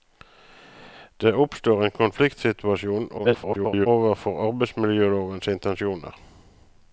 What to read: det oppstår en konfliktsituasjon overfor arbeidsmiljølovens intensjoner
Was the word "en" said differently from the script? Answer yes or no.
no